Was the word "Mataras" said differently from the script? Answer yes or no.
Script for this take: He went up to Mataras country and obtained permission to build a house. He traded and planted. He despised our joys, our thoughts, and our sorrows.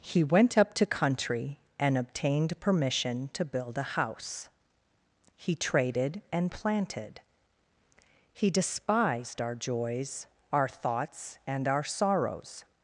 yes